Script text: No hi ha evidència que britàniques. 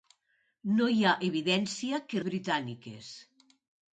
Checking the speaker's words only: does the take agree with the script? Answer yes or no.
yes